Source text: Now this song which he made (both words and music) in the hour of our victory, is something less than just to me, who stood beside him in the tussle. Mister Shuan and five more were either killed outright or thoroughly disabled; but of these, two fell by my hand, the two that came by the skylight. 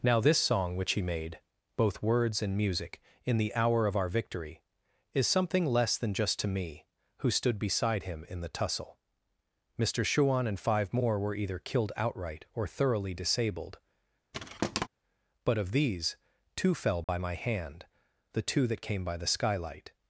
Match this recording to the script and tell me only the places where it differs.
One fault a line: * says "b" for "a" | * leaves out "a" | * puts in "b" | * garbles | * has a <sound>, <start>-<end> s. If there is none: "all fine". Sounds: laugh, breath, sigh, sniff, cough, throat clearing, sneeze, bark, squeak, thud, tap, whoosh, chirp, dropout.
* has a thud, 14.3-14.9 s
* has a dropout, 17.0-17.1 s